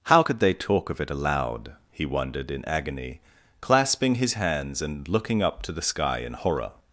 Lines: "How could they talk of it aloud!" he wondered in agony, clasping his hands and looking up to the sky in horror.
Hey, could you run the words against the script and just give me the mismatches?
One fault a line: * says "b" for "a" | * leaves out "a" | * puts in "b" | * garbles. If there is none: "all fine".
all fine